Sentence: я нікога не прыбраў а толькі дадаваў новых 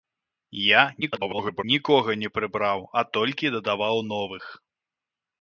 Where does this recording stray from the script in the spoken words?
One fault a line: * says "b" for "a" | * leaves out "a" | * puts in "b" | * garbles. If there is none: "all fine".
* garbles